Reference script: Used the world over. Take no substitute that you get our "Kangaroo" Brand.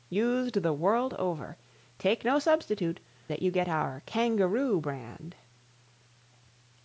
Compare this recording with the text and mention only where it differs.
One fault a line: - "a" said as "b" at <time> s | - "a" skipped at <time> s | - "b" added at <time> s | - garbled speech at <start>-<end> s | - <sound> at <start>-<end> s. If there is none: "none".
none